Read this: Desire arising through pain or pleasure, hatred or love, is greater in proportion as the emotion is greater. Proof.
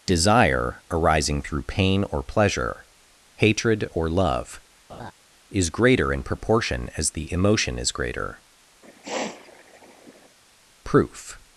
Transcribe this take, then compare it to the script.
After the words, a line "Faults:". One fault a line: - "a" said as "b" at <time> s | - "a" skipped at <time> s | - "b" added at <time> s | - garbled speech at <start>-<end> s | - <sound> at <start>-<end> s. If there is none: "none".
Desire arising through pain or pleasure, hatred or love, is greater in proportion as the emotion is greater. Proof.
Faults:
- laugh at 4.9-5.1 s
- sniff at 8.8-10.4 s